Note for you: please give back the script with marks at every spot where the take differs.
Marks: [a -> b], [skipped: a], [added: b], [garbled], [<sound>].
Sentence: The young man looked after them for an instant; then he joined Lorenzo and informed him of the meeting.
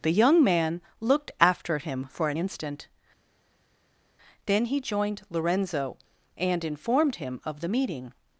The young man looked after [them -> him] for an instant; then he joined Lorenzo and informed him of the meeting.